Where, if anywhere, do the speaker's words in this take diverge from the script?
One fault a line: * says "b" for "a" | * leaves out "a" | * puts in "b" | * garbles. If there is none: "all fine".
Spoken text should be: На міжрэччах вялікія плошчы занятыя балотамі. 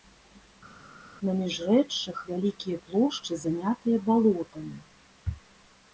all fine